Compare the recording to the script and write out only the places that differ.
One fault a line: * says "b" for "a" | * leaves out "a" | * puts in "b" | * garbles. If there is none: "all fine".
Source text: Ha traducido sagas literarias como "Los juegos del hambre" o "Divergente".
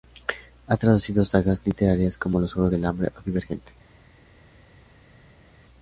all fine